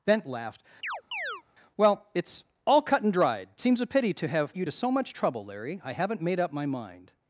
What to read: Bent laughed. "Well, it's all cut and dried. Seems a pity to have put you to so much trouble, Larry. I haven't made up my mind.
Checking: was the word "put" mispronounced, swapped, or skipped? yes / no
yes